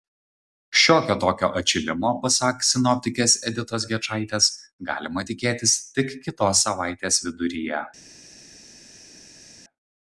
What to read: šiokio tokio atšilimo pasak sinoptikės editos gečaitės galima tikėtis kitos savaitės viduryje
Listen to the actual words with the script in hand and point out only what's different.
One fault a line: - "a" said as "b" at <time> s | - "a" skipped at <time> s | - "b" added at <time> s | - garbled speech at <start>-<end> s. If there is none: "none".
- "tik" added at 6.0 s